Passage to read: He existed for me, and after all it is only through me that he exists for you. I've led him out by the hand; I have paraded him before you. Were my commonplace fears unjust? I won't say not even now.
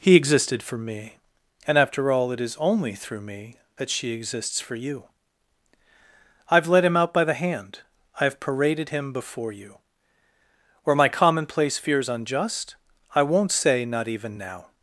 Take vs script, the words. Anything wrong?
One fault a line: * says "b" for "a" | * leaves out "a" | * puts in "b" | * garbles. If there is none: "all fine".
* says "she" for "he"